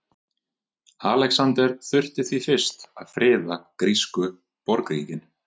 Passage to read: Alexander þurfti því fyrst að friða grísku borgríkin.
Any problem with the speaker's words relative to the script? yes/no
no